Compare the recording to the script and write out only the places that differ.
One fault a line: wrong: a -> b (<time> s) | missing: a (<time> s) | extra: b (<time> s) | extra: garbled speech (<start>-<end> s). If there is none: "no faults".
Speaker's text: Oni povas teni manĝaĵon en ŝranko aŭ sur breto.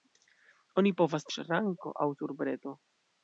missing: teni manĝaĵon en (1.3 s)